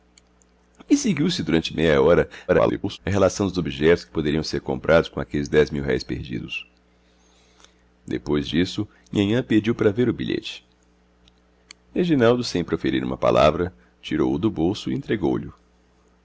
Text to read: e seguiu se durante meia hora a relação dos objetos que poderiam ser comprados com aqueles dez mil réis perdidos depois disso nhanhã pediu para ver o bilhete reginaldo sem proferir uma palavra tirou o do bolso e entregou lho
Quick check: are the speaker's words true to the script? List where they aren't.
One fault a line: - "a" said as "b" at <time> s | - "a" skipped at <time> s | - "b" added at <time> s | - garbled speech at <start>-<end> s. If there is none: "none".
- garbled speech at 2.5-3.0 s